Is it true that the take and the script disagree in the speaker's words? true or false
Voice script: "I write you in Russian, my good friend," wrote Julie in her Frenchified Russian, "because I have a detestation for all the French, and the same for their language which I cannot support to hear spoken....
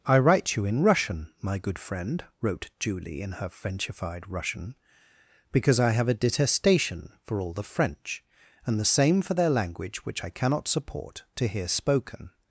false